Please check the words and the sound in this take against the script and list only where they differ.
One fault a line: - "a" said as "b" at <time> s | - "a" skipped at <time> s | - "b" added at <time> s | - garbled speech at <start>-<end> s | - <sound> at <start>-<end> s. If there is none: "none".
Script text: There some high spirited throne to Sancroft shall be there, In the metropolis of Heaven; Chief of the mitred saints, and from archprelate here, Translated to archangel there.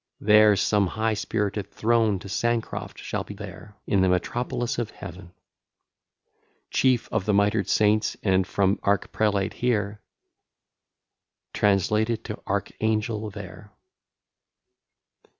none